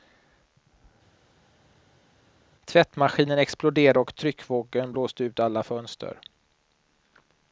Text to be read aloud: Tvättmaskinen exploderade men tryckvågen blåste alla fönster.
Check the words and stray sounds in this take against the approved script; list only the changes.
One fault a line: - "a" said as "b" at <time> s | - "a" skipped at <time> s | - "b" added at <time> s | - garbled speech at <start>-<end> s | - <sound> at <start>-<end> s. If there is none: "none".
- "men" said as "och" at 4.0 s
- "ut" added at 5.2 s